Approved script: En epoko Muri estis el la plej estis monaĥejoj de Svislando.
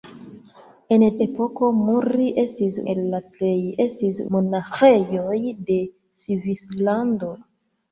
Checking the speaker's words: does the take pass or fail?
pass